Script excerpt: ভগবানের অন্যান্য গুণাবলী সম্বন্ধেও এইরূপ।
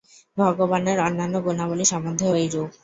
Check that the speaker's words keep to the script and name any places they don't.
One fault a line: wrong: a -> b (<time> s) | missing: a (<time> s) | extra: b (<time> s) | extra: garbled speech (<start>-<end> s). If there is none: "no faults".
no faults